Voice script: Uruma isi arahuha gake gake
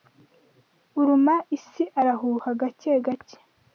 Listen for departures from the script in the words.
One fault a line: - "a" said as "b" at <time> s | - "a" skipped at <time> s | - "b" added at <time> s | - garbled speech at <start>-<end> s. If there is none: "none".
none